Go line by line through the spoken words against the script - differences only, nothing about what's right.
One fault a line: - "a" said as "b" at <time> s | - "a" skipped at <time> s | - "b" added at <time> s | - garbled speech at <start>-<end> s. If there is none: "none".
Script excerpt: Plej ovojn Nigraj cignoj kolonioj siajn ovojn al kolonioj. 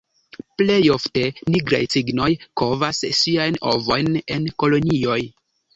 - "ovojn" said as "ofte" at 0.9 s
- "kolonioj" said as "kovas" at 2.6 s
- "al" said as "en" at 4.4 s